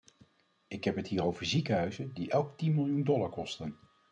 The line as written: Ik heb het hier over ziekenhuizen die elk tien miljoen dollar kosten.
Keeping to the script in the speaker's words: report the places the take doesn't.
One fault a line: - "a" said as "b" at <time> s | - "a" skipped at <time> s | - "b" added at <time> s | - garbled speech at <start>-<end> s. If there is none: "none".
none